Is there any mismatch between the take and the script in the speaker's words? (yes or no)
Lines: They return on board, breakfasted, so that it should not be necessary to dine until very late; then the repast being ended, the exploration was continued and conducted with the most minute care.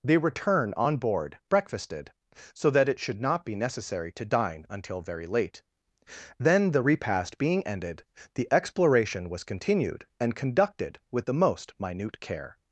no